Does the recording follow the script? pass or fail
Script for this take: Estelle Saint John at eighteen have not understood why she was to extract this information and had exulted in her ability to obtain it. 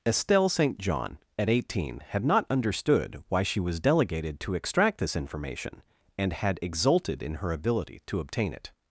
fail